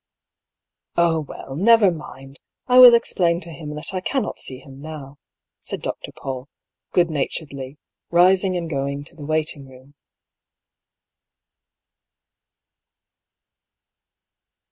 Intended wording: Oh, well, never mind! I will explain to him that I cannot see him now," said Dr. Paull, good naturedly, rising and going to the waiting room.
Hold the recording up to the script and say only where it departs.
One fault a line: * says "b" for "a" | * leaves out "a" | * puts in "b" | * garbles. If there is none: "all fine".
all fine